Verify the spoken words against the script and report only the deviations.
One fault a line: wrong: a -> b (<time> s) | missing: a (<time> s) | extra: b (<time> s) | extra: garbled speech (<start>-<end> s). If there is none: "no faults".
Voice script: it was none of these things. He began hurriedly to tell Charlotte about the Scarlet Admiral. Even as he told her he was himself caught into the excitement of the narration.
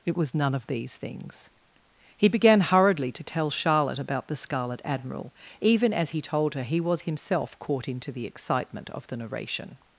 no faults